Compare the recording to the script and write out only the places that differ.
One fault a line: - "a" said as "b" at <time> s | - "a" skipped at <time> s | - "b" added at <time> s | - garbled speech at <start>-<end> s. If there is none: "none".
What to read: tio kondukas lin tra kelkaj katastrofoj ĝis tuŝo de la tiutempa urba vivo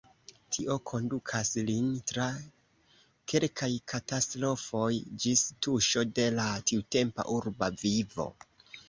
none